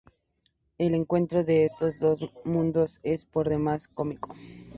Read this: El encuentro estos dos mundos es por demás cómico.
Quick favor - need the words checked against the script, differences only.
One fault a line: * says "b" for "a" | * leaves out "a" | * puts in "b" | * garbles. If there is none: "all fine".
* puts in "de"